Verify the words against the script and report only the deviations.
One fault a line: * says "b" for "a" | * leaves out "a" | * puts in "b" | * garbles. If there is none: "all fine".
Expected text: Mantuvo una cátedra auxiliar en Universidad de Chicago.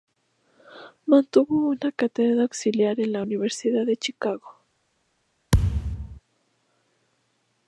* puts in "la"